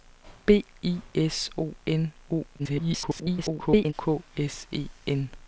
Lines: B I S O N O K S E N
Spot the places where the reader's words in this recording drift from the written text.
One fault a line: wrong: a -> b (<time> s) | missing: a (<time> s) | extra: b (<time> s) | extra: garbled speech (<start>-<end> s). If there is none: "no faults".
extra: garbled speech (2.6-3.9 s)